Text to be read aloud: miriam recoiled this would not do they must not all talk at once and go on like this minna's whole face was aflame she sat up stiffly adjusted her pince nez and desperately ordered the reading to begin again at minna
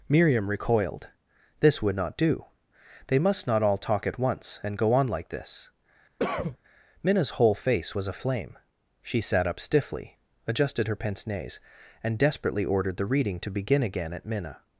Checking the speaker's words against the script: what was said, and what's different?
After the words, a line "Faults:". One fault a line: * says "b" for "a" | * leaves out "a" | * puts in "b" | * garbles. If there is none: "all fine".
miriam recoiled this would not do they must not all talk at once and go on like this minna's whole face was aflame she sat up stiffly adjusted her pince nez and desperately ordered the reading to begin again at minna
Faults:
all fine